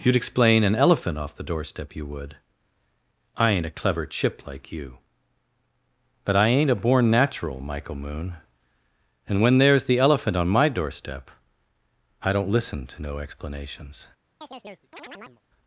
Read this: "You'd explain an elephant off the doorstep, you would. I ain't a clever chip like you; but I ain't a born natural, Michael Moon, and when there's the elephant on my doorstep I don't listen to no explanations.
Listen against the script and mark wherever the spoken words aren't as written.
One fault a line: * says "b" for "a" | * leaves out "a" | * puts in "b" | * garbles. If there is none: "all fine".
all fine